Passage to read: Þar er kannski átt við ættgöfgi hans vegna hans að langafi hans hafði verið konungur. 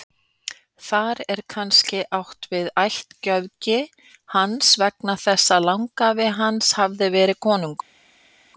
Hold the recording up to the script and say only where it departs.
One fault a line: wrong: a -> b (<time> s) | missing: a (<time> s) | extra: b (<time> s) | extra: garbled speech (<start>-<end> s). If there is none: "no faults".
wrong: hans -> þess (5.2 s)